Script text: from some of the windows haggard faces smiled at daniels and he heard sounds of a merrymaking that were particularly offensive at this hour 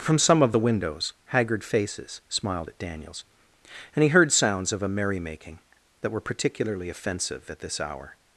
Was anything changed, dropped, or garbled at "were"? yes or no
no